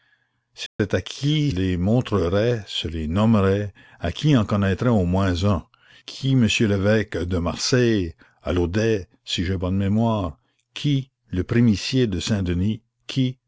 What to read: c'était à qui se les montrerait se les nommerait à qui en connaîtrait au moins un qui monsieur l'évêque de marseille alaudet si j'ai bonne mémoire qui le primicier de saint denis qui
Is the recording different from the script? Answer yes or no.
yes